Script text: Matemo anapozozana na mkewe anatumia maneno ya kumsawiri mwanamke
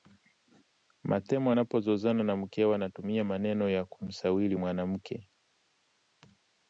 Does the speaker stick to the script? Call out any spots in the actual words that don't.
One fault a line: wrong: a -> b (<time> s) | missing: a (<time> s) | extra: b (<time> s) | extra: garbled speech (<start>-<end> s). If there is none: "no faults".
no faults